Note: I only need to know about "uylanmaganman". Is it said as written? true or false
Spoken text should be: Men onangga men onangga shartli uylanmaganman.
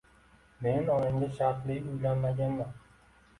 true